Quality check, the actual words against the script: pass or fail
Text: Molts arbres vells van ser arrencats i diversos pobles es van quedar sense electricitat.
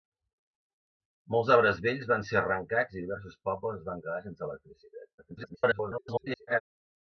fail